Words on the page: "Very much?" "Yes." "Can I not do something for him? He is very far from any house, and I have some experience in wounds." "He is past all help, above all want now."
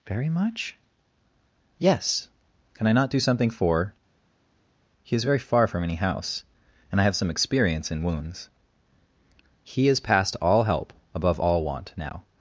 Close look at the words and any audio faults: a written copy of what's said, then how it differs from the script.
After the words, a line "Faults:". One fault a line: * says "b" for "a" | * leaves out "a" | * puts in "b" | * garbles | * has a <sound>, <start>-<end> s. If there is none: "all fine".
"Very much?" "Yes." "Can I not do something for? He is very far from any house, and I have some experience in wounds." "He is past all help, above all want now."
Faults:
* leaves out "him"